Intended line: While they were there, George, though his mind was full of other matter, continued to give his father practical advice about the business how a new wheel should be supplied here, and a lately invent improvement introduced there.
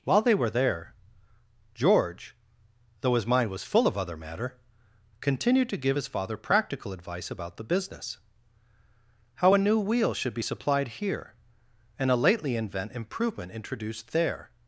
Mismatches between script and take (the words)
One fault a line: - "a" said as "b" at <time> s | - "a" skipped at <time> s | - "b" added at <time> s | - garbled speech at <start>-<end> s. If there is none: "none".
none